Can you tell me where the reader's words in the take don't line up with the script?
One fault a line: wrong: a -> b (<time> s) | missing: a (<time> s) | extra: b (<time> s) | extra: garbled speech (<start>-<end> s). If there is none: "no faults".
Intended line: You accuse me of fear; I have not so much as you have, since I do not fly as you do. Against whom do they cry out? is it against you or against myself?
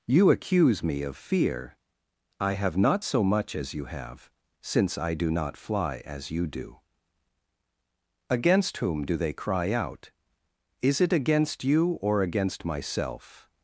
no faults